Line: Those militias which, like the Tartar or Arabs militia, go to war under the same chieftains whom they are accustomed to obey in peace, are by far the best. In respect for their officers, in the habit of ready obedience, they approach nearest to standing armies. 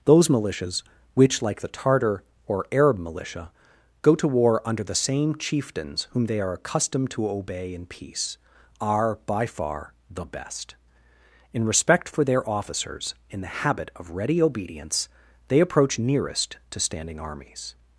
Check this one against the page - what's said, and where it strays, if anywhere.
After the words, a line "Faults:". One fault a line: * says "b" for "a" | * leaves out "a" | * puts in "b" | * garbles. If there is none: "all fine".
Those militias which, like the Tartar or Arab militia, go to war under the same chieftains whom they are accustomed to obey in peace, are by far the best. In respect for their officers, in the habit of ready obedience, they approach nearest to standing armies.
Faults:
* says "Arab" for "Arabs"